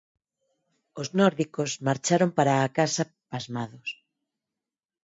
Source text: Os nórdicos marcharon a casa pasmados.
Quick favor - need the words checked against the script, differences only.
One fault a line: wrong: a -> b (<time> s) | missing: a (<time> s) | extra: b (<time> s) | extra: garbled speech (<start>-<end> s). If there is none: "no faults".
extra: para (2.4 s)